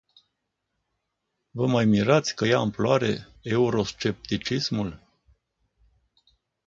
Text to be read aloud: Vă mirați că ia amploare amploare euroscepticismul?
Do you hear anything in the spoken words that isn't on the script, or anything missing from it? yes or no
yes